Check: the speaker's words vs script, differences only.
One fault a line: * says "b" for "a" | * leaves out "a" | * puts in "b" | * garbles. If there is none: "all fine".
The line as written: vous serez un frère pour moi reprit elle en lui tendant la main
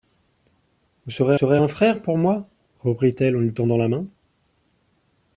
* puts in "serez"